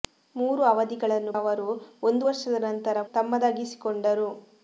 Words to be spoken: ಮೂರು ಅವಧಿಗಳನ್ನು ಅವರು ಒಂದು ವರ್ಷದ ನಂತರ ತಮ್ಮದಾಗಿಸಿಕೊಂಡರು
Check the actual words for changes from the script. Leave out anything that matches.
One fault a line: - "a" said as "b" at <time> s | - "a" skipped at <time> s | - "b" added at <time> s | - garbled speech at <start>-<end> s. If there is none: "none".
none